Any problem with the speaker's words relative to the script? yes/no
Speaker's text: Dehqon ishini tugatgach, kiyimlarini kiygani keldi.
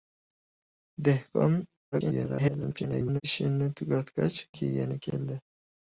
yes